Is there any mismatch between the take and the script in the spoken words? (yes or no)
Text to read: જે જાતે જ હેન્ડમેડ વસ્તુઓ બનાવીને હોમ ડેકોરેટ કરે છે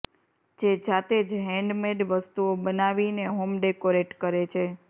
no